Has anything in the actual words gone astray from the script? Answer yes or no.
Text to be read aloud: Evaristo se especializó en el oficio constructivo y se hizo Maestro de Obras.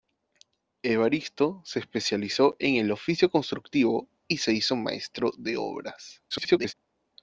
yes